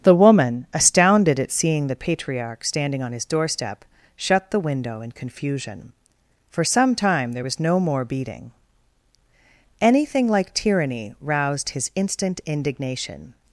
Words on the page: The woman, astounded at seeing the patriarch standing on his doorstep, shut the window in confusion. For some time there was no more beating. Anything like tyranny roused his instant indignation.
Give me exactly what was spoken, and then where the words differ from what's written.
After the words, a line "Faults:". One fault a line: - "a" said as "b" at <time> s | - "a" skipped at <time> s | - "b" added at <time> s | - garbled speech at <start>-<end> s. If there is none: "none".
The woman, astounded at seeing the patriarch standing on his doorstep, shut the window in confusion. For some time there was no more beating. Anything like tyranny roused his instant indignation.
Faults:
none